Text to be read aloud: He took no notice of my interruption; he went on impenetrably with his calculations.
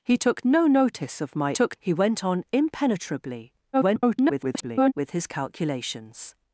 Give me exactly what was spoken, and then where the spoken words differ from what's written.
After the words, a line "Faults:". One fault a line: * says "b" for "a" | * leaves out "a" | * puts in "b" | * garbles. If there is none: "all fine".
He took no notice of my took; he went on impenetrably [garbled] with his calculations.
Faults:
* says "took" for "interruption"
* garbles